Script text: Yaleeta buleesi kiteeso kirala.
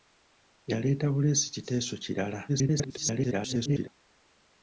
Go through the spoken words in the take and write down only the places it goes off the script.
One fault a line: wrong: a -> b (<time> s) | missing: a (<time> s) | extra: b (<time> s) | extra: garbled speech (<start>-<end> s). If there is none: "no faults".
extra: garbled speech (2.5-3.9 s)